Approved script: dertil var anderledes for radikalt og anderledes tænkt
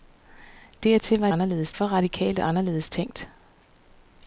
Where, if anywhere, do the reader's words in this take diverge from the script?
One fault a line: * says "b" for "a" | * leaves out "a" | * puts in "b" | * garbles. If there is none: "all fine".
all fine